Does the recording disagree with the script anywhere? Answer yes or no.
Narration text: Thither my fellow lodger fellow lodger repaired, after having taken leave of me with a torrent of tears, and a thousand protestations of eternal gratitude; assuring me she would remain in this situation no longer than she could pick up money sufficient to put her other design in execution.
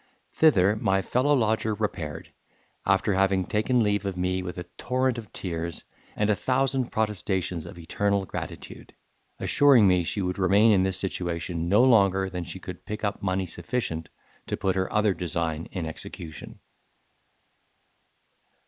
yes